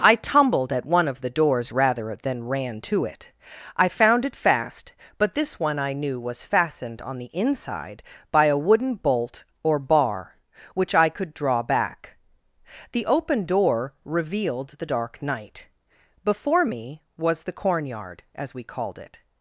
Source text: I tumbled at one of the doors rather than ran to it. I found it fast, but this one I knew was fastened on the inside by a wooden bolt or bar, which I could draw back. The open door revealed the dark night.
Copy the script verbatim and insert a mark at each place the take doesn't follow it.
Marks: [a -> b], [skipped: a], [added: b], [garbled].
I tumbled at one of the doors rather than ran to it. I found it fast, but this one I knew was fastened on the inside by a wooden bolt or bar, which I could draw back. The open door revealed the dark night. [added: Before me was the cornyard as we called it]